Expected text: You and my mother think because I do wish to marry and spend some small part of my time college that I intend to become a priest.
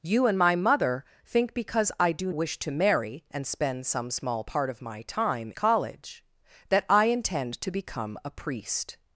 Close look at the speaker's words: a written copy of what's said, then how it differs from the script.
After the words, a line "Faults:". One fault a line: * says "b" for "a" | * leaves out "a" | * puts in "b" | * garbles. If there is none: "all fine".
You and my mother think because I do wish to marry and spend some small part of my time college that I intend to become a priest.
Faults:
all fine